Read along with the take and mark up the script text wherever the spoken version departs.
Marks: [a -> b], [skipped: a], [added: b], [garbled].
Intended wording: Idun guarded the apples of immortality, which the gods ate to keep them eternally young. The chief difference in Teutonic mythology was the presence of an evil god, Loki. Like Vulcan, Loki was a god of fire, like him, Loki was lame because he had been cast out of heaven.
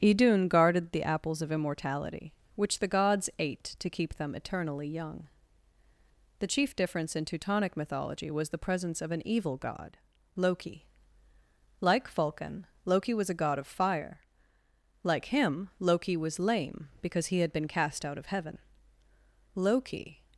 Idun guarded the apples of immortality, which the gods ate to keep them eternally young. The chief difference in Teutonic mythology was the presence of an evil god, Loki. Like Vulcan, Loki was a god of fire, like him, Loki was lame because he had been cast out of heaven. [added: Loki]